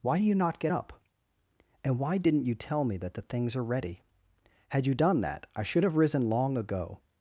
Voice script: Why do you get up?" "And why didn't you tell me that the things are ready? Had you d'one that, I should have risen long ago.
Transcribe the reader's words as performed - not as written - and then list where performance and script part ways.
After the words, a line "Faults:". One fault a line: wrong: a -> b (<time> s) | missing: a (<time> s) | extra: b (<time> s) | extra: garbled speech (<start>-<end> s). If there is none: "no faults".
Why do you not get up?" "And why didn't you tell me that the things are ready? Had you d'one that, I should have risen long ago.
Faults:
extra: not (0.3 s)